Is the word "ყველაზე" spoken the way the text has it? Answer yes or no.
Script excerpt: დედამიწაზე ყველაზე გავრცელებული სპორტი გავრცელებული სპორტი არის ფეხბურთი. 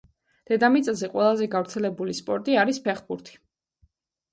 yes